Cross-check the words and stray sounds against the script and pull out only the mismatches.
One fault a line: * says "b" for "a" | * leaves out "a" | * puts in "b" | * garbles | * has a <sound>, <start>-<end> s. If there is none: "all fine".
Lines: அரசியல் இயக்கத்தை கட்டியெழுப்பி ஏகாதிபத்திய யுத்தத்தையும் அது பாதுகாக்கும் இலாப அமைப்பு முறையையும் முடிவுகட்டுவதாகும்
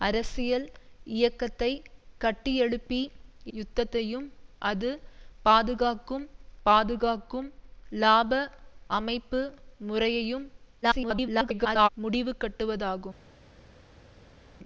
* leaves out "ஏகாதிபத்திய"
* puts in "பாதுகாக்கும்"
* garbles